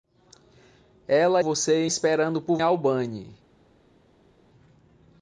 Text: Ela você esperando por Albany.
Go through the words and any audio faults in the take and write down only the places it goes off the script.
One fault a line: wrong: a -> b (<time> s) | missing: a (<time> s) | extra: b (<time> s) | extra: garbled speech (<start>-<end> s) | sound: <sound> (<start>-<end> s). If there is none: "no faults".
no faults